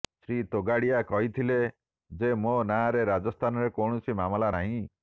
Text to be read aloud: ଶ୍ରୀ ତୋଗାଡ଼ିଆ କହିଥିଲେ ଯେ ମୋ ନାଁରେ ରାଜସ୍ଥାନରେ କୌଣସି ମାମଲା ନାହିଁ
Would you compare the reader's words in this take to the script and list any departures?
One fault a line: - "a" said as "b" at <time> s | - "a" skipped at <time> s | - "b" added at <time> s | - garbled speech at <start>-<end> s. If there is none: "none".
none